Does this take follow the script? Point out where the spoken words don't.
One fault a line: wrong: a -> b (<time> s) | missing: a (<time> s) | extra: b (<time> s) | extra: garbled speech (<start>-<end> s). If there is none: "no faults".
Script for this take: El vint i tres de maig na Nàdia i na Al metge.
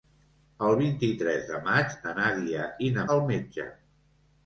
no faults